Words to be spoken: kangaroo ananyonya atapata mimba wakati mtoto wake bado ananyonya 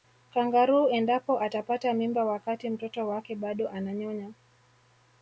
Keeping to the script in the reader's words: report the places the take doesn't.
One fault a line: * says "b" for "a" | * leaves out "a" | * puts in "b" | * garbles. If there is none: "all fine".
* says "endapo" for "ananyonya"